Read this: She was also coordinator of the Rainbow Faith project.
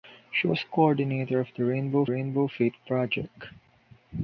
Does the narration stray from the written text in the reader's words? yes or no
yes